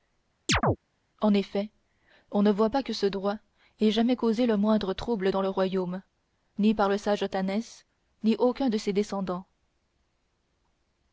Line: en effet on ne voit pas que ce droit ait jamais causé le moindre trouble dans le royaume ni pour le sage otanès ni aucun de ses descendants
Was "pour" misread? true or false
true